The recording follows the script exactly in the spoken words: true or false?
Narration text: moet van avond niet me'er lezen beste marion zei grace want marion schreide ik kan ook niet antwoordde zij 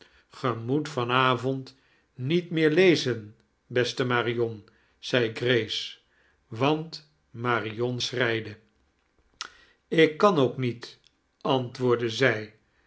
true